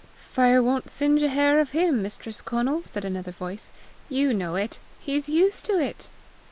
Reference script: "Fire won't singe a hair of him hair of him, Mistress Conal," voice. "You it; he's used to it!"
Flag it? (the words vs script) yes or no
yes